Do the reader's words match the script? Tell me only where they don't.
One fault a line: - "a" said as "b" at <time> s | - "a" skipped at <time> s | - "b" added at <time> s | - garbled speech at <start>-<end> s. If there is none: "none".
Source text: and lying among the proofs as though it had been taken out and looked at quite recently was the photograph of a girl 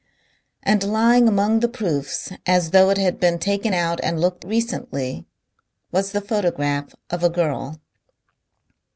- "at quite" skipped at 4.4 s